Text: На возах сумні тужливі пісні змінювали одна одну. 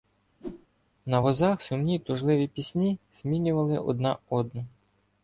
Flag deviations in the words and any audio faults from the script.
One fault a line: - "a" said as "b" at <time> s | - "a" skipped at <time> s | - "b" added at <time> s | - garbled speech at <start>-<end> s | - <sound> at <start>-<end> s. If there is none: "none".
- whoosh at 0.4-0.7 s